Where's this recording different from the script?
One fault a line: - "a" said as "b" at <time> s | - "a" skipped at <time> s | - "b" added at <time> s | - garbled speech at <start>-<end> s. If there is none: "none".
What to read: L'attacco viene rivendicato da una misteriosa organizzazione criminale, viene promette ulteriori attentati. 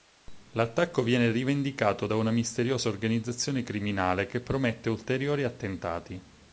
- "viene" said as "che" at 4.3 s